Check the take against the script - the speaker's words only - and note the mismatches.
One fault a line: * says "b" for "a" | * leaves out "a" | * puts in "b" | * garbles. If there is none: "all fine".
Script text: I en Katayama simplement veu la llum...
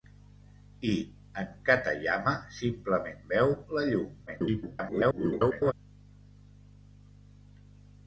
* garbles